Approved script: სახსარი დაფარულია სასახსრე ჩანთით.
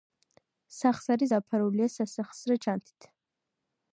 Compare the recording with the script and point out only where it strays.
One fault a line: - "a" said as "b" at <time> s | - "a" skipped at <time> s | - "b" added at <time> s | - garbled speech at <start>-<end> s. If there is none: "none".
none